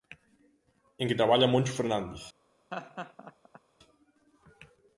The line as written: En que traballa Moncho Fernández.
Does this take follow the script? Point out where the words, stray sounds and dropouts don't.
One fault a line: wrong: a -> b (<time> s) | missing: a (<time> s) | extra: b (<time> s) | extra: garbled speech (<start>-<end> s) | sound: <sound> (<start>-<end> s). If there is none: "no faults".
sound: laugh (2.7-3.6 s)